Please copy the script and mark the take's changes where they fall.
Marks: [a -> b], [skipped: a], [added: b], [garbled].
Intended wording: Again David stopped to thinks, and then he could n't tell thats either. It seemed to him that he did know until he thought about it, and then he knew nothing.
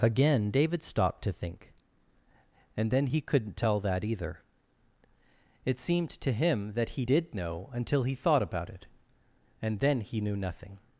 Again David stopped to [thinks, -> think] and then he could n't tell [thats -> that] either. It seemed to him that he did know until he thought about it, and then he knew nothing.